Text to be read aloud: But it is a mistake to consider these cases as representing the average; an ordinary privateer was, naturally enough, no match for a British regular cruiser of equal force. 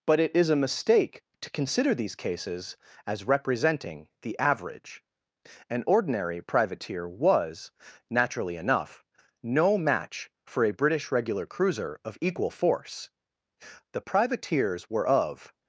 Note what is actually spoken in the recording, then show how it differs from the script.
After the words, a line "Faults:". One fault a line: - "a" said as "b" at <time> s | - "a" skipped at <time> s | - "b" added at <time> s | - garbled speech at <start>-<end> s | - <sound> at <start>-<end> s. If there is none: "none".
But it is a mistake to consider these cases as representing the average; an ordinary privateer was, naturally enough, no match for a British regular cruiser of equal force. The privateers were of
Faults:
- "The privateers were of" added at 13.9 s